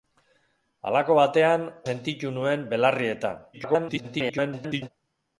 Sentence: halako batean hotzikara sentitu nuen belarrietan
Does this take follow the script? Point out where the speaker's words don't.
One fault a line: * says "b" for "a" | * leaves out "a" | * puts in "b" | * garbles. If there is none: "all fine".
* leaves out "hotzikara"
* garbles